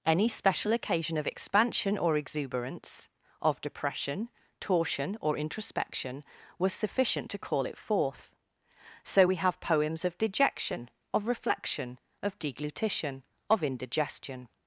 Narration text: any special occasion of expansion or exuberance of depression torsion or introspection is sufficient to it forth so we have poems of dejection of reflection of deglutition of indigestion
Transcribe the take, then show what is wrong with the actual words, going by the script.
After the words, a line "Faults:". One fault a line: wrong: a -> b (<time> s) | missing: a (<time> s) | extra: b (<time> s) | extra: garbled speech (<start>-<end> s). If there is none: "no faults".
any special occasion of expansion or exuberance of depression torsion or introspection was sufficient to call it forth so we have poems of dejection of reflection of deglutition of indigestion
Faults:
wrong: is -> was (6.6 s)
extra: call (7.4 s)